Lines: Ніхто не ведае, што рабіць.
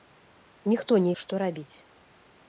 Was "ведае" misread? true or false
true